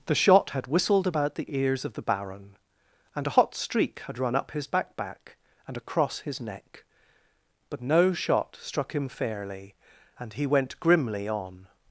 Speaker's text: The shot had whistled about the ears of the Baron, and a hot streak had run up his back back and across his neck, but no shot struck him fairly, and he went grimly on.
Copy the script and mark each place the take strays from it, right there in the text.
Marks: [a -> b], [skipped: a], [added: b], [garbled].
The shot had whistled about the ears of the Baron, and a hot streak had run up his back back and across his neck, but no shot struck him fairly, and he went grimly on.